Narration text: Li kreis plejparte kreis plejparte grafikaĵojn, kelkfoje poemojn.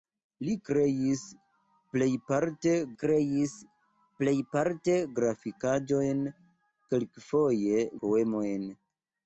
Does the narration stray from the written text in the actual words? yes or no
no